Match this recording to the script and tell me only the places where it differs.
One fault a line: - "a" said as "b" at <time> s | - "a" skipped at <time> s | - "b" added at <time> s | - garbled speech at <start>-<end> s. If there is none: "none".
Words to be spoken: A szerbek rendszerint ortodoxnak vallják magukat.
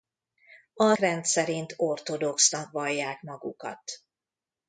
- "szerbek" skipped at 0.9 s